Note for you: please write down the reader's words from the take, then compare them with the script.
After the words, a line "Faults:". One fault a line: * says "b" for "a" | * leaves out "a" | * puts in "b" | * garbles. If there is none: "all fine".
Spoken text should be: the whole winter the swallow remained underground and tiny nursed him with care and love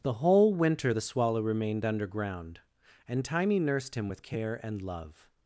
the whole winter the swallow remained underground and tiny nursed him with care and love
Faults:
all fine